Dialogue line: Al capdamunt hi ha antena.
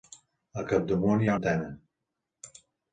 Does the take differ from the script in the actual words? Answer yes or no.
no